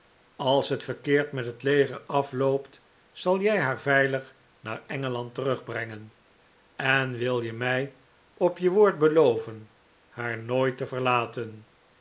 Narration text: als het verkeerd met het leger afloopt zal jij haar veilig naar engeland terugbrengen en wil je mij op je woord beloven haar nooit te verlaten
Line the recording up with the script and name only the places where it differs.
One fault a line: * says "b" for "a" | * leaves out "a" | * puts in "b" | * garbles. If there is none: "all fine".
all fine